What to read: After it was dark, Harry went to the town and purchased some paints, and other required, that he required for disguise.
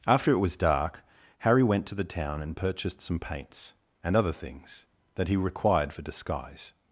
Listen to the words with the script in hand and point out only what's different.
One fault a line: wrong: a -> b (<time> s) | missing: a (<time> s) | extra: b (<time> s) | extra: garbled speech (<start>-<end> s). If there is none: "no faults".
wrong: required -> things (4.3 s)